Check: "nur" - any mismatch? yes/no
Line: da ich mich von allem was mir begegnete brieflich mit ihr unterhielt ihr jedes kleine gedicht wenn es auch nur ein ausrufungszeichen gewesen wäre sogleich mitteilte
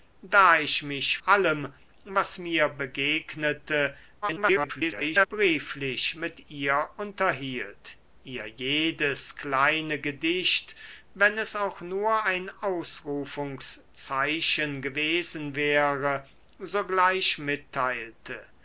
no